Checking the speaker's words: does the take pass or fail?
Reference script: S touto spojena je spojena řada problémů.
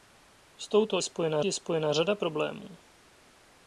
pass